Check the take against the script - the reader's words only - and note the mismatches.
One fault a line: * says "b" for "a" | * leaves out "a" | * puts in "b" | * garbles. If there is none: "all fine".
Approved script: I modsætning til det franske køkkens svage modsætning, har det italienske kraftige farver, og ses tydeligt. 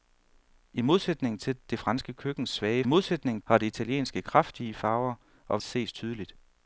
all fine